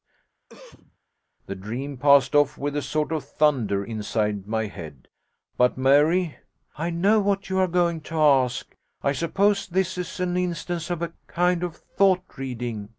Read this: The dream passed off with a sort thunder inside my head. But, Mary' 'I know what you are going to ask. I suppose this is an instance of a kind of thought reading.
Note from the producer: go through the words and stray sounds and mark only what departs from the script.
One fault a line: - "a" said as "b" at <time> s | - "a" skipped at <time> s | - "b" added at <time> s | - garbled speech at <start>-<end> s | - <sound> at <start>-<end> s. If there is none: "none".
- cough at 0.5-1.0 s
- "of" added at 3.1 s